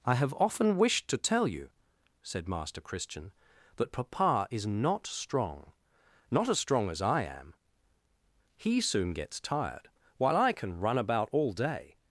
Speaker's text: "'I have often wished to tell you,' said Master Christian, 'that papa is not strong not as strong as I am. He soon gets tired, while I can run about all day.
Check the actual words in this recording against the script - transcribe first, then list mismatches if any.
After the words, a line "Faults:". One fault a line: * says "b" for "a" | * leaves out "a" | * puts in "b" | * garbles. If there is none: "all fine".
"'I have often wished to tell you,' said Master Christian, 'that papa is not strong not as strong as I am. He soon gets tired, while I can run about all day.
Faults:
all fine